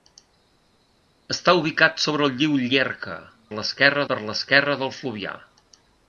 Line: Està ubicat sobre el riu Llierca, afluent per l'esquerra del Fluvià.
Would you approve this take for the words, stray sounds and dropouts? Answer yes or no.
no